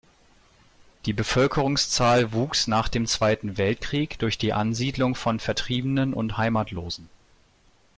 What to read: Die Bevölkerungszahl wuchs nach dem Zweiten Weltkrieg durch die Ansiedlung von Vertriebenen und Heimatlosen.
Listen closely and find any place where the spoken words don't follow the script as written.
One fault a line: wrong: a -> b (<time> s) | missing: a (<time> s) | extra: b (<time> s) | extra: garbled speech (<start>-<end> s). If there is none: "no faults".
no faults